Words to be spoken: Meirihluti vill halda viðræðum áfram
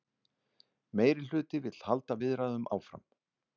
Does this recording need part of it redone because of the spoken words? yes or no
no